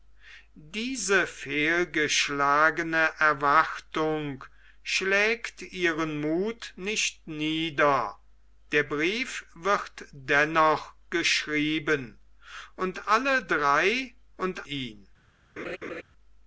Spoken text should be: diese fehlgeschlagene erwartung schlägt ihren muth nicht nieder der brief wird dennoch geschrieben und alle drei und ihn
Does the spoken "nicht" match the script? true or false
true